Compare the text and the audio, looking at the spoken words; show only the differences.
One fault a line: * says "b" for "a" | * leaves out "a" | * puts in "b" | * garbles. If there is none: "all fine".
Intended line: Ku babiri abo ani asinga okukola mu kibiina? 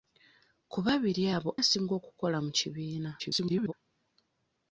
* leaves out "ani"
* garbles